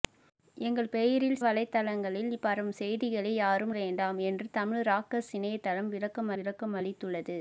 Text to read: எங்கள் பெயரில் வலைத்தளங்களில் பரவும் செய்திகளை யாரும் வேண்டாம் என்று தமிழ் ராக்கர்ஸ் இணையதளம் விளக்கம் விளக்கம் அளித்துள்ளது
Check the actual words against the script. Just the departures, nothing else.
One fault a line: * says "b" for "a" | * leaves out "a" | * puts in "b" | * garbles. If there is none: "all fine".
all fine